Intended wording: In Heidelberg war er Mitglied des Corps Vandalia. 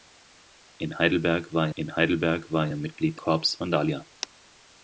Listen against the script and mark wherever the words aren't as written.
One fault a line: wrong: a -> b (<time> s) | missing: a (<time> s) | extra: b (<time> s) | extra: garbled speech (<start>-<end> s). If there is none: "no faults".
extra: in Heidelberg war (1.8 s)
missing: des (3.2 s)